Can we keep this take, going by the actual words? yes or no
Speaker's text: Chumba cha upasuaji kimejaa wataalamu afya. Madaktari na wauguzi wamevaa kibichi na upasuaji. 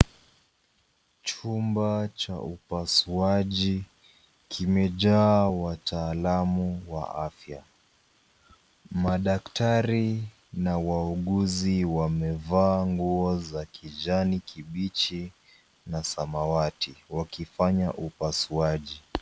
no